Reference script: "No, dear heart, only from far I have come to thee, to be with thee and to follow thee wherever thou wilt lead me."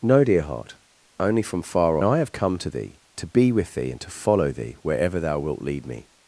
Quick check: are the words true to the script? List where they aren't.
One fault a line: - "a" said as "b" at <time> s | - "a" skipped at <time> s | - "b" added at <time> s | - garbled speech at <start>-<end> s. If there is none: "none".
none